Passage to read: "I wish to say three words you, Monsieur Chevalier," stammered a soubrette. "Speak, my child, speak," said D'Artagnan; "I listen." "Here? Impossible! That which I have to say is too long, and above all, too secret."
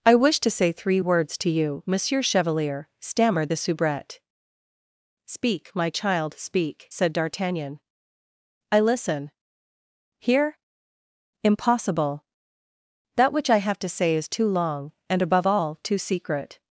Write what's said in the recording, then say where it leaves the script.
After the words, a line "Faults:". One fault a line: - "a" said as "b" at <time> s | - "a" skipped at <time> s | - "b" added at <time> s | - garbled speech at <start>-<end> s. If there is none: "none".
"I wish to say three words to you, Monsieur Chevalier," stammered the soubrette. "Speak, my child, speak," said D'Artagnan; "I listen." "Here? Impossible! That which I have to say is too long, and above all, too secret."
Faults:
- "to" added at 1.4 s
- "a" said as "the" at 3.5 s